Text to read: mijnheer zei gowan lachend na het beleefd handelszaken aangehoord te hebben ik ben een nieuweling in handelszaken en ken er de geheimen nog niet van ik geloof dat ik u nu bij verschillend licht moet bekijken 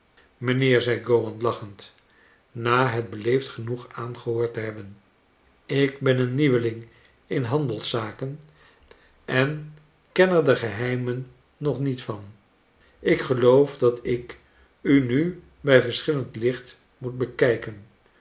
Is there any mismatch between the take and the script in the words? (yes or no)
yes